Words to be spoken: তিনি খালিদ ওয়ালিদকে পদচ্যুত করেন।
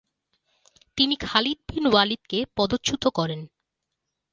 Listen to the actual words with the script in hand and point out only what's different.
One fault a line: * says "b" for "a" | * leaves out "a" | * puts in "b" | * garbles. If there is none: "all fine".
* puts in "বিন"